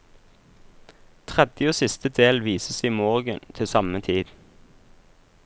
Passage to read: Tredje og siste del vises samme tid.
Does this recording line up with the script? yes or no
no